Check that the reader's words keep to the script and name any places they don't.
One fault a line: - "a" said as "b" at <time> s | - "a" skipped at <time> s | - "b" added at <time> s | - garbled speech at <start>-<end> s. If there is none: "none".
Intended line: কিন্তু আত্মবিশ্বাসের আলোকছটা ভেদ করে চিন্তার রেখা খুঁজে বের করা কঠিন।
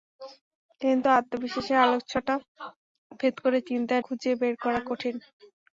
- "রেখা" skipped at 4.0 s